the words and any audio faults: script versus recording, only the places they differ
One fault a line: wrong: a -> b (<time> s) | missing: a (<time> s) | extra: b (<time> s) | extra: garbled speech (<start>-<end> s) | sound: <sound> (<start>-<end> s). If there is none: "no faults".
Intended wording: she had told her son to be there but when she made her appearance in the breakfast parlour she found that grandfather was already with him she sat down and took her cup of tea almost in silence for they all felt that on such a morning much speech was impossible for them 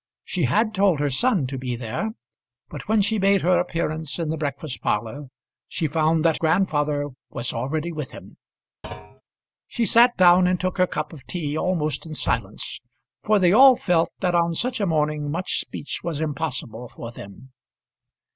sound: thud (8.8-9.2 s)